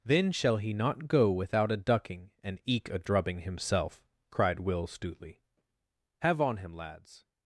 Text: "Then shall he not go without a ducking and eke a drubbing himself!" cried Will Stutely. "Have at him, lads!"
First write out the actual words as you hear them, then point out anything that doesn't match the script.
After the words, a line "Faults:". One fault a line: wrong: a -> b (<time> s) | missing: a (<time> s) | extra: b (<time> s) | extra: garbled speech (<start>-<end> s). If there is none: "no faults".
"Then shall he not go without a ducking and eke a drubbing himself!" cried Will Stutely. "Have on him, lads!"
Faults:
wrong: at -> on (6.4 s)